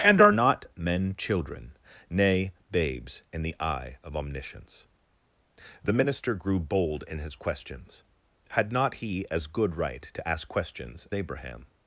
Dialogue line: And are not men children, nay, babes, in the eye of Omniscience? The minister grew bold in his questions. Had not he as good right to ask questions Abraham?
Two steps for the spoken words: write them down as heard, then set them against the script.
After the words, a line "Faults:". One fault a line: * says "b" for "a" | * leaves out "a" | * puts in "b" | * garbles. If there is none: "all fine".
And are not men children, nay, babes, in the eye of Omniscience? The minister grew bold in his questions. Had not he as good right to ask questions Abraham?
Faults:
all fine